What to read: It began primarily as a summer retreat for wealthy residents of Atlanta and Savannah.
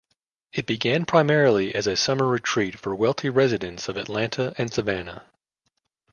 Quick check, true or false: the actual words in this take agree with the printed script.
true